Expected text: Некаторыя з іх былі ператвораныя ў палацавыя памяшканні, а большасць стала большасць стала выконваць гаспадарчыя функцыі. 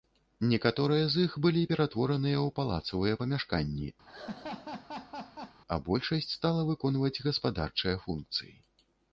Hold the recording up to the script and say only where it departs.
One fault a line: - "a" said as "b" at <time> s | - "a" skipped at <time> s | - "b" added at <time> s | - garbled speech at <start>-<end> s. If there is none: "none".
- "большасць стала" skipped at 6.6 s